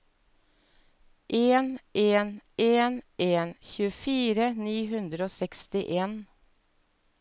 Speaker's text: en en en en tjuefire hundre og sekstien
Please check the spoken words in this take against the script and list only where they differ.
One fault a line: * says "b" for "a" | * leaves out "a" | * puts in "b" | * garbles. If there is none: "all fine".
* puts in "ni"